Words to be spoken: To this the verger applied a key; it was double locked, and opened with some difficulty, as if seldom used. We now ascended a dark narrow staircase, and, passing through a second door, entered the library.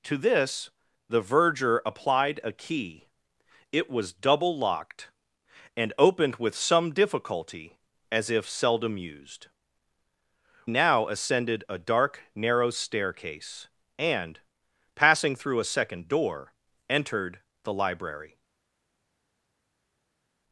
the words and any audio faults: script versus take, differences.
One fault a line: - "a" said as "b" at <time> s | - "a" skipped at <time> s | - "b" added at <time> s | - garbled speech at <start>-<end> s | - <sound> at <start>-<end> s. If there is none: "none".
- "We" skipped at 9.5 s